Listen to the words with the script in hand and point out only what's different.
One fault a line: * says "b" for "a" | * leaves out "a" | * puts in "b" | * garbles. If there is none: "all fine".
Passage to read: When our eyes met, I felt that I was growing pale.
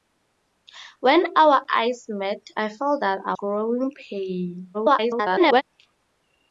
* leaves out "was"
* garbles